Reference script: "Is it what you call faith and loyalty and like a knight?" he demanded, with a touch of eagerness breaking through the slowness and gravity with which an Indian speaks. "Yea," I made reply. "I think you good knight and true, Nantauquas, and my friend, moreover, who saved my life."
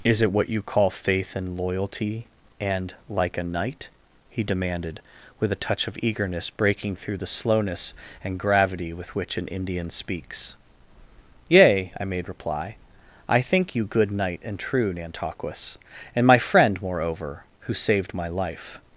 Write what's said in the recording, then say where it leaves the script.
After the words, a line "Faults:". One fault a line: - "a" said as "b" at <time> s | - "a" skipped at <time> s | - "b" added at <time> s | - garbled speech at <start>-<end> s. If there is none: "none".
"Is it what you call faith and loyalty and like a knight?" he demanded, with a touch of eagerness breaking through the slowness and gravity with which an Indian speaks. "Yea," I made reply. "I think you good knight and true, Nantauquas, and my friend, moreover, who saved my life."
Faults:
none